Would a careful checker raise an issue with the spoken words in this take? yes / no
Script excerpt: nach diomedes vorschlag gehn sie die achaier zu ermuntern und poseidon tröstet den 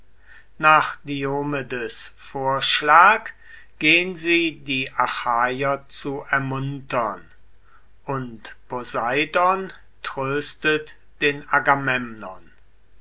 no